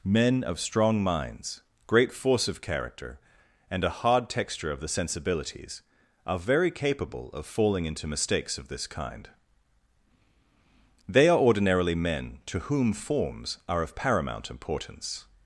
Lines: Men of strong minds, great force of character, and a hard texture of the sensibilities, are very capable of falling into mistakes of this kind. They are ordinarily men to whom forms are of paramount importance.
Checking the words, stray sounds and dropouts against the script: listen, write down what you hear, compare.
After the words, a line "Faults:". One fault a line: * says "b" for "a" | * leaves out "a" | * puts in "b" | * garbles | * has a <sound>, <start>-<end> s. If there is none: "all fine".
Men of strong minds, great force of character, and a hard texture of the sensibilities, are very capable of falling into mistakes of this kind. They are ordinarily men to whom forms are of paramount importance.
Faults:
all fine